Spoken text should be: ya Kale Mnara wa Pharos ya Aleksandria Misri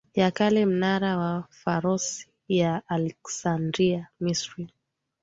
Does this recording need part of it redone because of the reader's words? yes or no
no